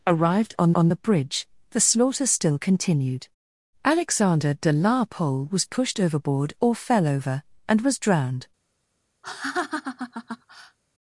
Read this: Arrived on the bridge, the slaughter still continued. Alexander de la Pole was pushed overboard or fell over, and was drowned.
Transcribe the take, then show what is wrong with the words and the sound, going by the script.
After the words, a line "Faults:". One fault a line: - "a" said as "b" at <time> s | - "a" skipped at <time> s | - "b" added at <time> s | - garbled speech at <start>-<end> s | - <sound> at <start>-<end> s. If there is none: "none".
Arrived on on the bridge, the slaughter still continued. Alexander de la Pole was pushed overboard or fell over, and was drowned.
Faults:
- "on" added at 0.7 s
- laugh at 9.2-10.8 s